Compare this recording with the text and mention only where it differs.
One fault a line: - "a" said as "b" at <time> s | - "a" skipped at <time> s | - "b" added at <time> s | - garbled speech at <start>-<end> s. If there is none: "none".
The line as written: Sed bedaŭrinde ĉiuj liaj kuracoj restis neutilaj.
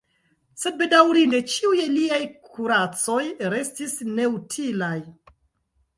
none